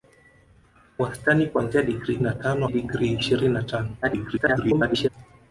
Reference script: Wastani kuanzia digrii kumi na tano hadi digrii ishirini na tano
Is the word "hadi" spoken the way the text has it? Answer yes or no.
no